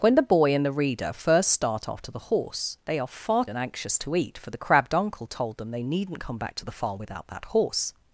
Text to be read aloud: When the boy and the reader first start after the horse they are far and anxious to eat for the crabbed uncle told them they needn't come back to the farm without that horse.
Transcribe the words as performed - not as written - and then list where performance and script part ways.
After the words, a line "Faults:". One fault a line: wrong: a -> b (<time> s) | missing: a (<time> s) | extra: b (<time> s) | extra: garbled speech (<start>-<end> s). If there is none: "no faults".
When the boy and the reader first start after the horse they are far and anxious to eat for the crabbed uncle told them they needn't come back to the farm without that horse.
Faults:
no faults